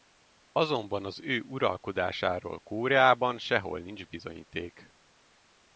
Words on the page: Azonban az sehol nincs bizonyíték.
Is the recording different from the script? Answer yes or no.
yes